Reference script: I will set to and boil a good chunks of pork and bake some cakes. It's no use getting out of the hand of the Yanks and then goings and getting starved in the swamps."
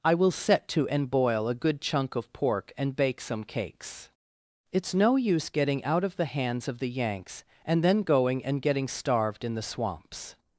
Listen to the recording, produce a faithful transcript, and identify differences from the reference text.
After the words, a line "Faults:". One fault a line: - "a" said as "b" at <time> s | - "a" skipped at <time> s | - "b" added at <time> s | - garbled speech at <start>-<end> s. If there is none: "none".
I will set to and boil a good chunk of pork and bake some cakes. It's no use getting out of the hands of the Yanks and then going and getting starved in the swamps."
Faults:
- "chunks" said as "chunk" at 1.8 s
- "hand" said as "hands" at 6.2 s
- "goings" said as "going" at 8.0 s